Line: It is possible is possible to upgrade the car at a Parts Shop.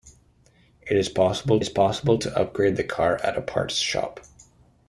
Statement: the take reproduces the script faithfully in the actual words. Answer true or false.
true